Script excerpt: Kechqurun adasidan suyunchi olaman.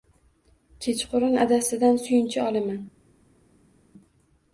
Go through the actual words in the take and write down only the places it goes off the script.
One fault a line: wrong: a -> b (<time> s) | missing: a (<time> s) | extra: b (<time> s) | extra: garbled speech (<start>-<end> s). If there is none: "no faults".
no faults